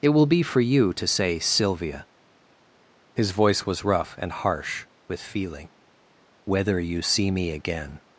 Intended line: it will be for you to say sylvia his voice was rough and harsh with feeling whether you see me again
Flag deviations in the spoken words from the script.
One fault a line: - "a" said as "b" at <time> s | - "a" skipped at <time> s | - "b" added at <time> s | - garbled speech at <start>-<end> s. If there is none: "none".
none